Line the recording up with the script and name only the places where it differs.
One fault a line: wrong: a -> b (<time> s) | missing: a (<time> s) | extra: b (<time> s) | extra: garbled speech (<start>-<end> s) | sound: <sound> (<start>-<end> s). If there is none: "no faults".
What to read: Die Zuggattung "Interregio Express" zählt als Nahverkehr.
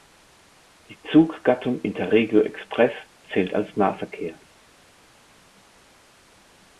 no faults